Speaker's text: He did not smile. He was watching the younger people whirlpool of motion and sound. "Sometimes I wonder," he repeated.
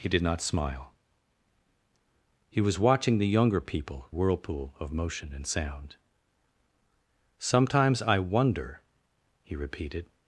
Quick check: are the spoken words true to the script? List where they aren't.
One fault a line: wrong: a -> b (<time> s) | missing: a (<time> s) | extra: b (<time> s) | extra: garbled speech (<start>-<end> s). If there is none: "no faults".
no faults